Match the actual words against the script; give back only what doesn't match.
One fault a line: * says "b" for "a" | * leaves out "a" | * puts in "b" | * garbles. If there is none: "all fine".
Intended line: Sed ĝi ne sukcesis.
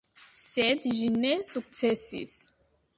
all fine